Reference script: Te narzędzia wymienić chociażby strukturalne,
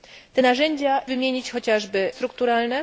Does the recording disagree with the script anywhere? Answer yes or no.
no